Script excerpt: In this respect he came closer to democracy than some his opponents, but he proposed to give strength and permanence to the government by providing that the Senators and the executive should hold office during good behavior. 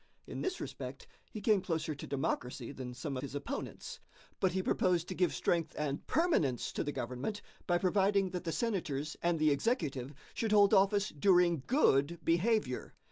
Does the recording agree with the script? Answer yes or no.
yes